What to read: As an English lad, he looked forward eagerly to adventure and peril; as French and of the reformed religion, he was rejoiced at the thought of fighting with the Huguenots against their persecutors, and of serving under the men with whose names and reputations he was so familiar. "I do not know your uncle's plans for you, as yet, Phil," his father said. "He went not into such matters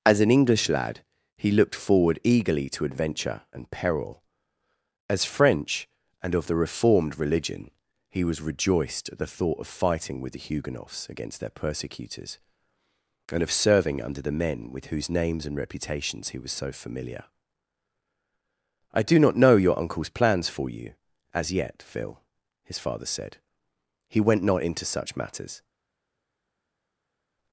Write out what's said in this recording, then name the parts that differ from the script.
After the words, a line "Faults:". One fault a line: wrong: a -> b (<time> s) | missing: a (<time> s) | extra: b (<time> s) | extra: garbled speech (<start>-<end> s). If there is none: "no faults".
As an English lad, he looked forward eagerly to adventure and peril; as French and of the reformed religion, he was rejoiced at the thought of fighting with the Huguenots against their persecutors, and of serving under the men with whose names and reputations he was so familiar. "I do not know your uncle's plans for you, as yet, Phil," his father said. "He went not into such matters
Faults:
no faults